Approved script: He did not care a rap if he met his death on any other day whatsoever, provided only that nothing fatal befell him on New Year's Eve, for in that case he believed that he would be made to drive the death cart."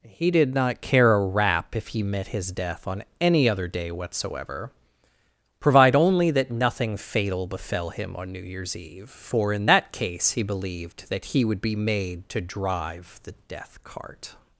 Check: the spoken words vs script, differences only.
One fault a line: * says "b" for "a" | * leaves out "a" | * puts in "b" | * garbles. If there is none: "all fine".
* says "provide" for "provided"